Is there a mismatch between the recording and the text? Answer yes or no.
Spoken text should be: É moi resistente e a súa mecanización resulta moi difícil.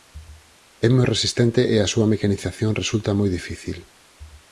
no